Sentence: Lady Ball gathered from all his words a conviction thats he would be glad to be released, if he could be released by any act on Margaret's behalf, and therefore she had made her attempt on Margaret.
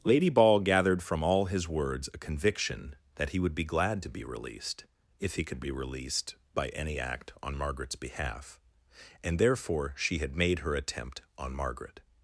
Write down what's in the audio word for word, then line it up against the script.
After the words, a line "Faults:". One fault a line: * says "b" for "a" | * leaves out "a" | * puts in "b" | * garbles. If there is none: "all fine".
Lady Ball gathered from all his words a conviction that he would be glad to be released, if he could be released by any act on Margaret's behalf, and therefore she had made her attempt on Margaret.
Faults:
* says "that" for "thats"